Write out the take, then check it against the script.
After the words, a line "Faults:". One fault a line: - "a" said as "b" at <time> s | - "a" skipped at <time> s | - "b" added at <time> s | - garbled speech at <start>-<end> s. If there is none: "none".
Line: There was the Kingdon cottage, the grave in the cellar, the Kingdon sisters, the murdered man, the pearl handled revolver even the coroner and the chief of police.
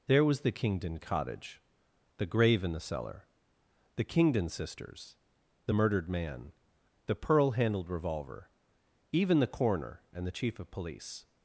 There was the Kingdon cottage, the grave in the cellar, the Kingdon sisters, the murdered man, the pearl handled revolver even the coroner and the chief of police.
Faults:
none